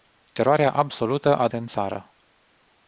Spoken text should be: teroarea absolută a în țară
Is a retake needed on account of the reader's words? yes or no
no